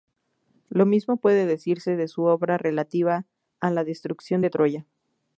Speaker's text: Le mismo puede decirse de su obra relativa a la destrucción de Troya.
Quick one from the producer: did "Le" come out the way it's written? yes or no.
no